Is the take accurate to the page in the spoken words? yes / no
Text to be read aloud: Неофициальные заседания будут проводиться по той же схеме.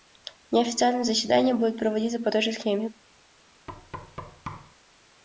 yes